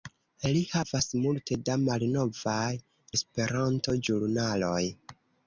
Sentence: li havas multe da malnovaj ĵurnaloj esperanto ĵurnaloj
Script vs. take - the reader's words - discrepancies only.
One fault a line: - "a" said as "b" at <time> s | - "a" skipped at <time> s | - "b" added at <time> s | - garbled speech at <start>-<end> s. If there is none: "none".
- "ĵurnaloj" skipped at 2.7 s